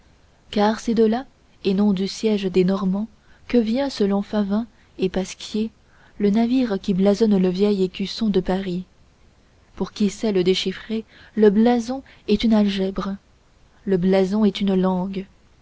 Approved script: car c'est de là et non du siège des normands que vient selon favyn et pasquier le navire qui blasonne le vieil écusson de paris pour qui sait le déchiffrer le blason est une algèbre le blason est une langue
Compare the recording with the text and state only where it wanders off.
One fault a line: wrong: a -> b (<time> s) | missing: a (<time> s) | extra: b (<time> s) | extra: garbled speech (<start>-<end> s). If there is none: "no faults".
no faults